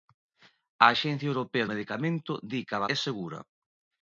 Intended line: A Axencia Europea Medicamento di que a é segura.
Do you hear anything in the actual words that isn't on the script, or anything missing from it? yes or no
no